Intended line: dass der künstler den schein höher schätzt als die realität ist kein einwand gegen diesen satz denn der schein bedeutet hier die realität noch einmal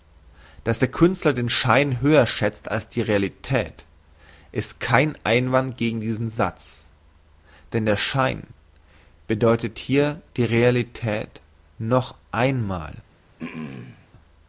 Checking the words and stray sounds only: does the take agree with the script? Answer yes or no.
no